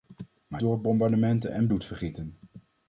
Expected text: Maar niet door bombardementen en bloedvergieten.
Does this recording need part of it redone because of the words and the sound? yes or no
yes